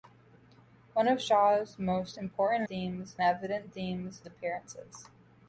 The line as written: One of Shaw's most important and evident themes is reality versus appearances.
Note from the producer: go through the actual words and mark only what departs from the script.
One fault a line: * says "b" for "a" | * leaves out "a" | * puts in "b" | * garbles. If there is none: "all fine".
* says "themes" for "and"
* leaves out "is reality versus"